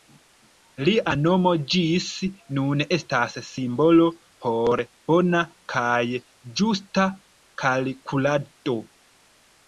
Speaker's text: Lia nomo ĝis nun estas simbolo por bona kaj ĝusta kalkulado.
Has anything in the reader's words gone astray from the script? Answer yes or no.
no